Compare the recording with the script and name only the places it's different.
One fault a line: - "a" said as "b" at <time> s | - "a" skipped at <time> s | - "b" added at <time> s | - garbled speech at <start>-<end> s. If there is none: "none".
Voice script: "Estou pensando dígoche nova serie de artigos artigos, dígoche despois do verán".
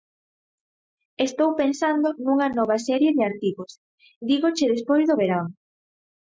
- "dígoche" said as "nunha" at 2.2 s
- "artigos" skipped at 3.7 s